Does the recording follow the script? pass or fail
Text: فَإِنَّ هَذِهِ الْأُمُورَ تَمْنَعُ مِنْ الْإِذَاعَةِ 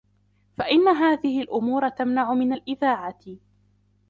pass